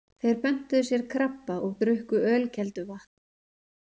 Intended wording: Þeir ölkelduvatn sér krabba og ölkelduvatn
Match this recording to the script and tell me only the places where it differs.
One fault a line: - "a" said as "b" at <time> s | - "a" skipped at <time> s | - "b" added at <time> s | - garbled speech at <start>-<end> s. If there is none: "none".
- "ölkelduvatn" said as "pöntuðu" at 0.4 s
- "drukku" added at 1.8 s